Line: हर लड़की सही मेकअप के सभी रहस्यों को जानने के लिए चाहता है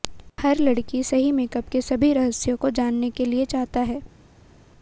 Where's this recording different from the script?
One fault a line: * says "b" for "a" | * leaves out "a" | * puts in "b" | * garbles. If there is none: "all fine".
all fine